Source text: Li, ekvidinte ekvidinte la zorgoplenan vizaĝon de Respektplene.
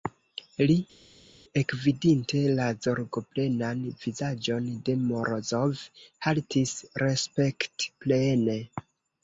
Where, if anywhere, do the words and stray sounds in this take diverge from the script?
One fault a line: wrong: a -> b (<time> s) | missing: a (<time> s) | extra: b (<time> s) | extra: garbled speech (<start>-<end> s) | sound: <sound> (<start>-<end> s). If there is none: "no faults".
missing: ekvidinte (2.4 s)
extra: Morozov haltis (5.0 s)